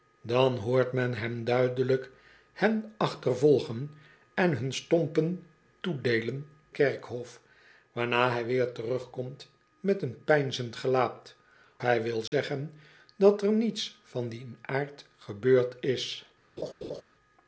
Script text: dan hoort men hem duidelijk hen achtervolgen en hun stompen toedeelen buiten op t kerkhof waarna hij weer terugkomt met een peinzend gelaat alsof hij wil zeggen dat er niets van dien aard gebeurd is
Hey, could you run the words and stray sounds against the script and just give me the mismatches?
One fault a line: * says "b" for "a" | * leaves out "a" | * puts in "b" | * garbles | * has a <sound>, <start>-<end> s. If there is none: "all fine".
* leaves out "buiten op t"
* leaves out "alsof"
* has a dropout, 12.3-12.3 s
* has a laugh, 16.6-17.0 s